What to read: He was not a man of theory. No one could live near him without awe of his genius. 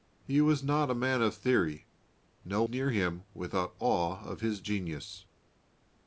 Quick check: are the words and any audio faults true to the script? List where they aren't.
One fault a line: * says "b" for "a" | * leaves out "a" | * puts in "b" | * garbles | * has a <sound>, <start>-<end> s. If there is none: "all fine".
* leaves out "one could live"